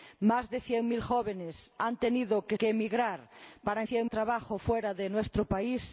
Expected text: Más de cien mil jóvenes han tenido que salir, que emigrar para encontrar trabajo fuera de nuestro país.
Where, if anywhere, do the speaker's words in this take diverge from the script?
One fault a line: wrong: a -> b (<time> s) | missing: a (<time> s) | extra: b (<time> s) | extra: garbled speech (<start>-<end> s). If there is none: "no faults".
missing: salir (2.6 s)
wrong: encontrar -> cien (3.8 s)